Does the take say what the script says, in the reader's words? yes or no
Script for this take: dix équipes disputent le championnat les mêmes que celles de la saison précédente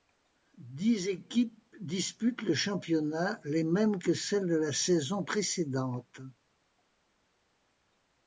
yes